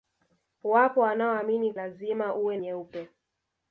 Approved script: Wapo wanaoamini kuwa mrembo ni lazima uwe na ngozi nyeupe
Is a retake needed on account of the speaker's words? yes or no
yes